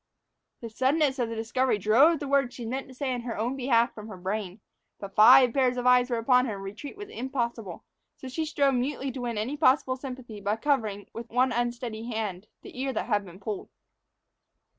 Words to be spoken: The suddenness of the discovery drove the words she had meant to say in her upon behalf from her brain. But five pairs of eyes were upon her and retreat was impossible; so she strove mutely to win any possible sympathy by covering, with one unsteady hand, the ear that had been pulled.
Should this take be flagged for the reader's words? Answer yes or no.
yes